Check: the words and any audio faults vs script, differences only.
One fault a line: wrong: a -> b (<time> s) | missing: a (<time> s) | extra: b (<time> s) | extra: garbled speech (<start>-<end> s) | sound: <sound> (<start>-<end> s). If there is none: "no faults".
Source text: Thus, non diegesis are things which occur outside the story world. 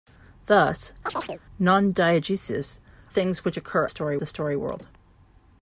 sound: chirp (1.1-1.4 s)
missing: are (2.8 s)
wrong: outside -> story (3.9 s)